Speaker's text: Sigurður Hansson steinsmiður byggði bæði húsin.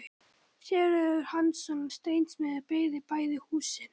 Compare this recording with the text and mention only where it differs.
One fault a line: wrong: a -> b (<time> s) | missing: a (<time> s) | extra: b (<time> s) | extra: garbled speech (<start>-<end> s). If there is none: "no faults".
no faults